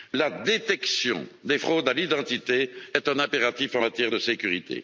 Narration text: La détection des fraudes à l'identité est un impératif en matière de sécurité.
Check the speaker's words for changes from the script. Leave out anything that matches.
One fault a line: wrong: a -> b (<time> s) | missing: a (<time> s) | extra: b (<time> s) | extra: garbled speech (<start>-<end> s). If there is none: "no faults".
no faults